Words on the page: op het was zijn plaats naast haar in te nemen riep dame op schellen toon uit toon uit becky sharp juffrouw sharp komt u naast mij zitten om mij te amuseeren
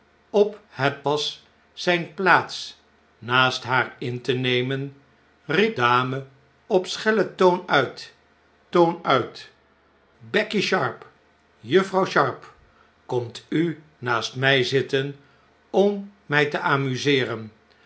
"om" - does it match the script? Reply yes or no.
yes